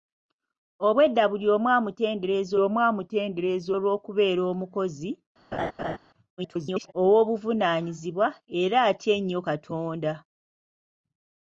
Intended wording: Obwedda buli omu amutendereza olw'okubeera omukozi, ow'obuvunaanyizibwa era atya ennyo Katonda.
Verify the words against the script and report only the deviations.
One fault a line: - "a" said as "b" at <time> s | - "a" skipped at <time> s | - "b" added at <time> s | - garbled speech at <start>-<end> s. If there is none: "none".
- "omu amutendereza" added at 2.7 s
- garbled speech at 6.4-6.9 s